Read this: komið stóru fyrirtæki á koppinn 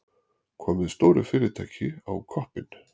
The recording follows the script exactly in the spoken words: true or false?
true